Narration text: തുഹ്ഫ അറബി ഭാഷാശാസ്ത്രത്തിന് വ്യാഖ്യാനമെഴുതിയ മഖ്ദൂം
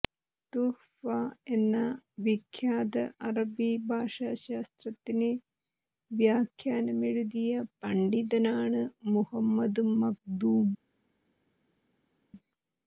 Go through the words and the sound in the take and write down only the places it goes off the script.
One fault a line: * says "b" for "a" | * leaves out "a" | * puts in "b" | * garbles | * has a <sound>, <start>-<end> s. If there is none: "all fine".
* puts in "എന്ന വിഖ്യാത"
* puts in "പണ്ഡിതനാണ് മുഹമ്മദ്"